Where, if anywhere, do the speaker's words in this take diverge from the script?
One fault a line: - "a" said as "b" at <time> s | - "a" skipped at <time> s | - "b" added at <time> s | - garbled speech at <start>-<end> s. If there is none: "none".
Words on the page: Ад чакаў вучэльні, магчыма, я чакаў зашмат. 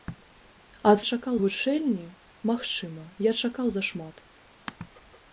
none